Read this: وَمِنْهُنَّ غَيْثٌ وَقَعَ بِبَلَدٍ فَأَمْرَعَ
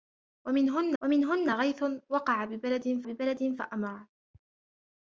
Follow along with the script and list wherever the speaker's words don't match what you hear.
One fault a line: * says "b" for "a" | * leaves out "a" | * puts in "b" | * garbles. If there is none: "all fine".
* puts in "وَمِنْهُنَّ"
* puts in "بِبَلَدٍ"